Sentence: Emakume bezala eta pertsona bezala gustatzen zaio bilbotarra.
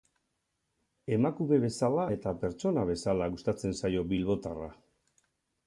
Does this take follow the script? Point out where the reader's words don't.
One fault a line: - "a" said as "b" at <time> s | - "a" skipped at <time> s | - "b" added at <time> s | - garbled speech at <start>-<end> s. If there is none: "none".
none